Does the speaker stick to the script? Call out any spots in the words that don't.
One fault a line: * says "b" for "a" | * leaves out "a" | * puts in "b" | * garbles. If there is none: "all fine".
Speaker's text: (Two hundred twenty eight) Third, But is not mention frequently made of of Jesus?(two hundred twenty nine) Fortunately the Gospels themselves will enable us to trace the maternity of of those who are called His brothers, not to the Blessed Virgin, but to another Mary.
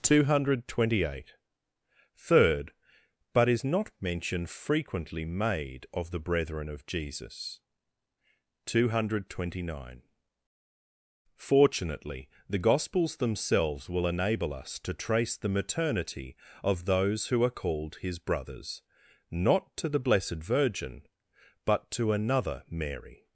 * puts in "the brethren"
* leaves out "of"